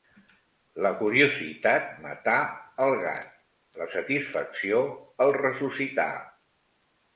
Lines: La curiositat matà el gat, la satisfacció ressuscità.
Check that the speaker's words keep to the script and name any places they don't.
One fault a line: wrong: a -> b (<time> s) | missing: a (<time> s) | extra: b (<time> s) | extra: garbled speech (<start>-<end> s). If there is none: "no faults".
extra: el (5.3 s)